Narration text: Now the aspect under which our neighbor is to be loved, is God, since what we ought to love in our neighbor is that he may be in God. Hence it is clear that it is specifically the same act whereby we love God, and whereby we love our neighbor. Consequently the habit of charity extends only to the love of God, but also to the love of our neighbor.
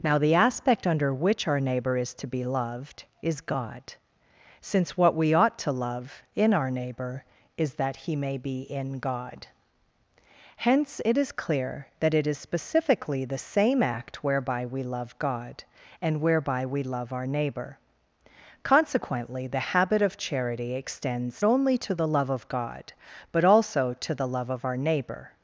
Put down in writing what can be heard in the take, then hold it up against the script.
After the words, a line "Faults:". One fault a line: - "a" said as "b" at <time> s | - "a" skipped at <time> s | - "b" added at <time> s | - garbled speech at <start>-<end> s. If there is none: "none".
Now the aspect under which our neighbor is to be loved, is God, since what we ought to love in our neighbor is that he may be in God. Hence it is clear that it is specifically the same act whereby we love God, and whereby we love our neighbor. Consequently the habit of charity extends only to the love of God, but also to the love of our neighbor.
Faults:
none